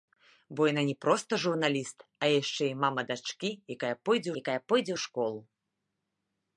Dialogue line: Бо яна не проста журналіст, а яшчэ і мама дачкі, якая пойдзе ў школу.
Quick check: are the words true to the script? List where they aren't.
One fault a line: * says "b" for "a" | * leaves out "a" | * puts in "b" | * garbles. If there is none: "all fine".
* puts in "якая пойдзе"